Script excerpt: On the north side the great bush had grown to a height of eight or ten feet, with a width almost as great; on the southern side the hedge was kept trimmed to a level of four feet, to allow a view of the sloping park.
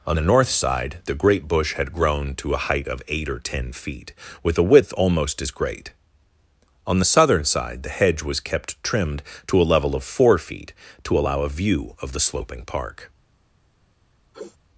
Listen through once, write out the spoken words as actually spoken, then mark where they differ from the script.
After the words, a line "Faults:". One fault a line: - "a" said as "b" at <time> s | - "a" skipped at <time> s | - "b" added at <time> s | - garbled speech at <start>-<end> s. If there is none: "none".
On the north side the great bush had grown to a height of eight or ten feet, with a width almost as great; on the southern side the hedge was kept trimmed to a level of four feet, to allow a view of the sloping park.
Faults:
none